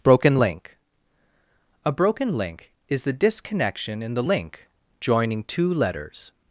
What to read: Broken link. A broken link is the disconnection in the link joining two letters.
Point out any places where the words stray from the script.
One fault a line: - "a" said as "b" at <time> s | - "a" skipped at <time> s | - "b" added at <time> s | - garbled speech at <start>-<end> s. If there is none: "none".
none